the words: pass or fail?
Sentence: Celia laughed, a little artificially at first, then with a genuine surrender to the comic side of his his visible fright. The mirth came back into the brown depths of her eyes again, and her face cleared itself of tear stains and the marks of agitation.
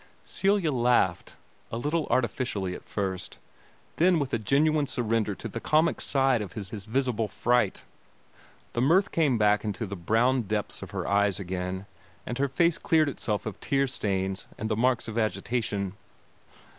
pass